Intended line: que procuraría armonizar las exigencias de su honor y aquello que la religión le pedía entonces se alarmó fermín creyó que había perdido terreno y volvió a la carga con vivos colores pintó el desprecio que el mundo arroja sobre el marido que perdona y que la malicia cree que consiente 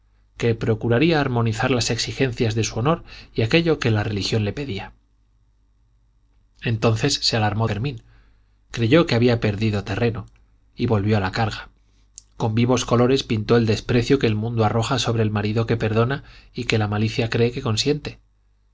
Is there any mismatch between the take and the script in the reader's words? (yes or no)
no